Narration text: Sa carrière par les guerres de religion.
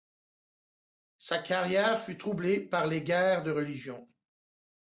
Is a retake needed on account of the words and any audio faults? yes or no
yes